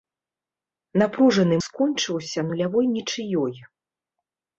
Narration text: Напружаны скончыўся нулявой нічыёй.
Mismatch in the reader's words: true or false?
false